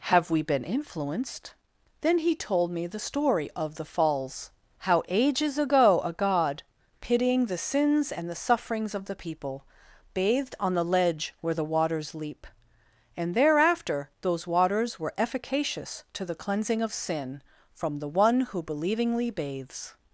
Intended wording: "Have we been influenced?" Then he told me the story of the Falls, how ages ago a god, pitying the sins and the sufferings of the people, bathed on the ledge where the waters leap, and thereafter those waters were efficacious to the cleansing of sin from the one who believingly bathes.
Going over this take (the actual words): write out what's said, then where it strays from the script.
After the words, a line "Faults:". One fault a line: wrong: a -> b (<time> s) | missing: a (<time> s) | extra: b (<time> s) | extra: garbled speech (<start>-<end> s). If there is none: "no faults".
"Have we been influenced?" Then he told me the story of the Falls, how ages ago a god, pitying the sins and the sufferings of the people, bathed on the ledge where the waters leap, and thereafter those waters were efficacious to the cleansing of sin from the one who believingly bathes.
Faults:
no faults